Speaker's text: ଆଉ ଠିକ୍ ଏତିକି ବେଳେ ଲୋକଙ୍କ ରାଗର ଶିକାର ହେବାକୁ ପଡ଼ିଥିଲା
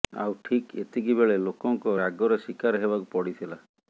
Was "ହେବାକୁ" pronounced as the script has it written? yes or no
yes